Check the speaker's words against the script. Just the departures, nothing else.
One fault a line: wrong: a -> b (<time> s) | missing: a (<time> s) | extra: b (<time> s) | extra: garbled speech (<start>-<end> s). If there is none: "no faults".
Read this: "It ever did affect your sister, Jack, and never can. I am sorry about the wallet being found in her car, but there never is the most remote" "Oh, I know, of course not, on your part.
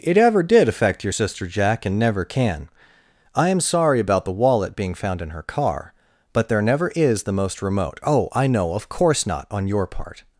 no faults